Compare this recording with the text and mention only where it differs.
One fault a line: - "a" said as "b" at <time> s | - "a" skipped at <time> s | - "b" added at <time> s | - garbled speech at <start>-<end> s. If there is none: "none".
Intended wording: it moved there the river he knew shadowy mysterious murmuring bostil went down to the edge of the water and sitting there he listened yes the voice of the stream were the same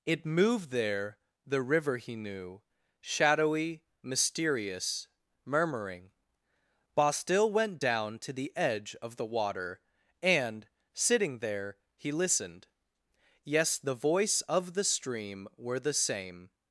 none